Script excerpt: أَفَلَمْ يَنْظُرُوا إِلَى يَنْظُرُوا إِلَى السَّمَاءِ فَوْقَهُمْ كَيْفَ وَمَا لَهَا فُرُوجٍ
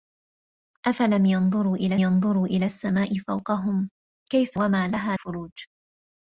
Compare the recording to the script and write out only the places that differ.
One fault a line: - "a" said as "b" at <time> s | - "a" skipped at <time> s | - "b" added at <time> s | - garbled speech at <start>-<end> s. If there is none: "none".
none